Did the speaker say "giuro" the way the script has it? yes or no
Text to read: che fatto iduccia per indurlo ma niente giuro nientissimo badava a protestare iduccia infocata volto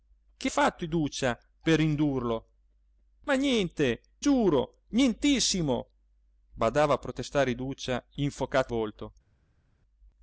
yes